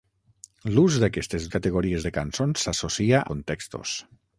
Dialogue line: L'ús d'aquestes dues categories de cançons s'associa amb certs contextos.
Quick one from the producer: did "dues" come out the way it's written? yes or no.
no